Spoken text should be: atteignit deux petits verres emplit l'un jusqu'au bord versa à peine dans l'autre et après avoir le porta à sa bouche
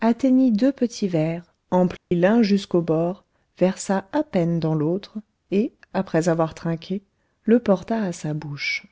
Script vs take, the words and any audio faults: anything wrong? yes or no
yes